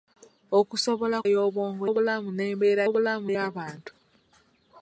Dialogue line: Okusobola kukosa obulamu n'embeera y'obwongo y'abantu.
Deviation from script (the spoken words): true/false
true